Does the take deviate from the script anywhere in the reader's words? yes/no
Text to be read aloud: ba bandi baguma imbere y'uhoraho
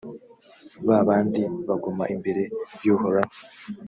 no